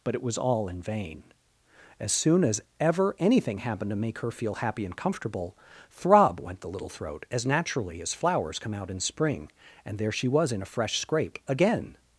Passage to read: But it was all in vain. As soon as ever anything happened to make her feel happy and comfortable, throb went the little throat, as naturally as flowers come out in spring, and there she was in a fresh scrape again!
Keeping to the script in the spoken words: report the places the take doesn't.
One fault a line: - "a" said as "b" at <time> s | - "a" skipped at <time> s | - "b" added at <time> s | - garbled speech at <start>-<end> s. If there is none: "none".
none